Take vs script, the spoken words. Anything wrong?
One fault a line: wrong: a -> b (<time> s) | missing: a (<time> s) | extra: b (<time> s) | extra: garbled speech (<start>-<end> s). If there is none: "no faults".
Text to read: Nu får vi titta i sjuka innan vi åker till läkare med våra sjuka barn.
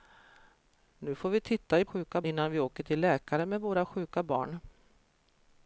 no faults